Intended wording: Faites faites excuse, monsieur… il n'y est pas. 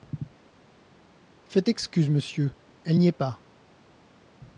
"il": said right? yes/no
no